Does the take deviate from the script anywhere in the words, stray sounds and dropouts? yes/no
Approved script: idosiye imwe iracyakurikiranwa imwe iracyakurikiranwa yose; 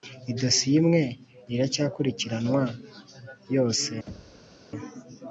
yes